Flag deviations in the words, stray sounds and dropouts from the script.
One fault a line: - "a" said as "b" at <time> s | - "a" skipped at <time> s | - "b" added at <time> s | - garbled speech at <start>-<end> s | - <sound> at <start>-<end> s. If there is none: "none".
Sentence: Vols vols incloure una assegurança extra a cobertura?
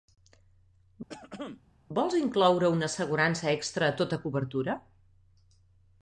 - throat clearing at 1.1-1.6 s
- "vols" skipped at 2.2 s
- "tota" added at 4.0 s